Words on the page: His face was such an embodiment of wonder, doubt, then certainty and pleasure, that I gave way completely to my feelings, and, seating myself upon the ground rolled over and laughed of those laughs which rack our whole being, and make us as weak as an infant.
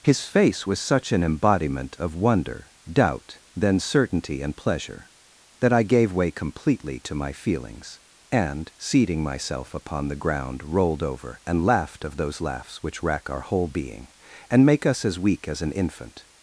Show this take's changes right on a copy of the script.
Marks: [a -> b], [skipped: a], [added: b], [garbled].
His face was such an embodiment of wonder, doubt, then certainty and pleasure, that I gave way completely to my feelings, and, seating myself upon the ground rolled over and laughed of those laughs which rack our whole being, and make us as weak as an infant.